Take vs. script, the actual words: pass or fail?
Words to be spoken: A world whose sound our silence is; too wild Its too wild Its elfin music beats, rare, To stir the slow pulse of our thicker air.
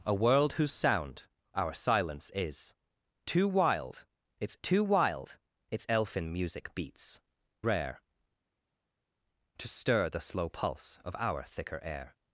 pass